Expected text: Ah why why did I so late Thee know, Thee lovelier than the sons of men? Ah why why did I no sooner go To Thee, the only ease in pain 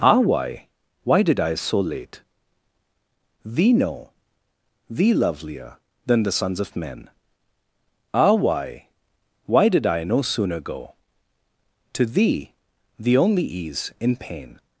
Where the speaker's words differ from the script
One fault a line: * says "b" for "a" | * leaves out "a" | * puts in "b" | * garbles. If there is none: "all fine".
all fine